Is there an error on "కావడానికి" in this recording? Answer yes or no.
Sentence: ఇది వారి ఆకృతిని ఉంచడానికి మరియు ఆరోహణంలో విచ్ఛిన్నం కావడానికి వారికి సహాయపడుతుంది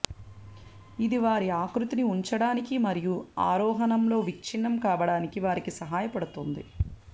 no